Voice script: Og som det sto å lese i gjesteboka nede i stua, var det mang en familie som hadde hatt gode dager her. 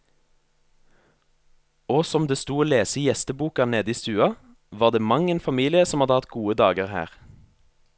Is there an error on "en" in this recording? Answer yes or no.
no